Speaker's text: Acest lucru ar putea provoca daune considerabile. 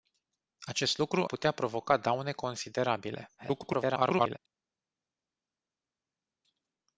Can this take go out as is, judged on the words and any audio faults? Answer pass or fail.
fail